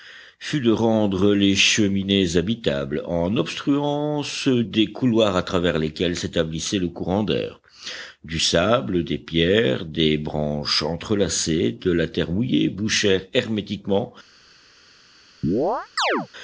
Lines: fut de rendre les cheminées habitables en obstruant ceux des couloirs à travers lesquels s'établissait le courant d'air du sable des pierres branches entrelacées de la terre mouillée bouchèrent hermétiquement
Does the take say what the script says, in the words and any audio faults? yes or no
no